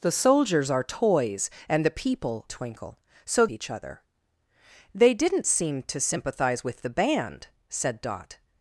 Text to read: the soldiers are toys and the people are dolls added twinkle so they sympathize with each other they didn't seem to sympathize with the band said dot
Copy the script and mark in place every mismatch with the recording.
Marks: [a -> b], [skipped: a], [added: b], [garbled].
the soldiers are toys and the people [skipped: are dolls added] twinkle so [skipped: they sympathize with] each other they didn't seem to sympathize with the band said dot